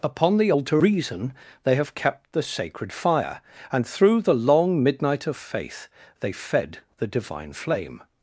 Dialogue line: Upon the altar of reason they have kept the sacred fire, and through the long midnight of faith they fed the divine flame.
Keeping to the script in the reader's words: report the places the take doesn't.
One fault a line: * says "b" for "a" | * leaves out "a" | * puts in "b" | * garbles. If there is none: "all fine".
* leaves out "of"